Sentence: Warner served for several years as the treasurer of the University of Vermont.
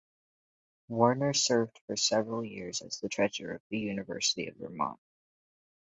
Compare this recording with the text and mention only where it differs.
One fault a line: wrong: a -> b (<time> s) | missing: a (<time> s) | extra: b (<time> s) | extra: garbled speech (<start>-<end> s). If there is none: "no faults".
no faults